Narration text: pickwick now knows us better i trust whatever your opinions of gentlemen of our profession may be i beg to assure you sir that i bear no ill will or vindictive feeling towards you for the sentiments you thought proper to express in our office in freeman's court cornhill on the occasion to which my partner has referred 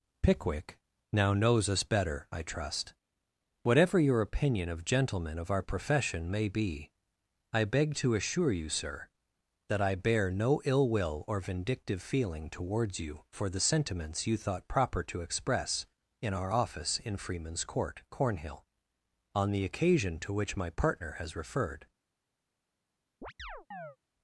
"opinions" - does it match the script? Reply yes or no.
no